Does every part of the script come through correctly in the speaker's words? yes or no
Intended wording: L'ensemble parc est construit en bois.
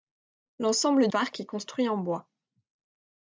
yes